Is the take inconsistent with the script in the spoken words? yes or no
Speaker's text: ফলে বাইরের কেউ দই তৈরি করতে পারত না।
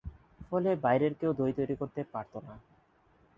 no